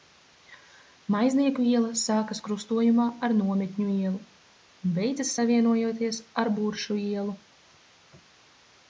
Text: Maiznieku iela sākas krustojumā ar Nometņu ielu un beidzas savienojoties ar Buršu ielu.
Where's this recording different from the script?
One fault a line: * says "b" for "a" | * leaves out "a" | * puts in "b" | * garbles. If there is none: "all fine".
all fine